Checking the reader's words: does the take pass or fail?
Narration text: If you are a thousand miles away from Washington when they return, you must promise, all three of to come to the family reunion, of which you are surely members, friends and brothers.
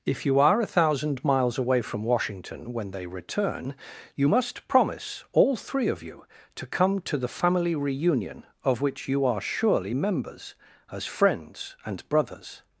fail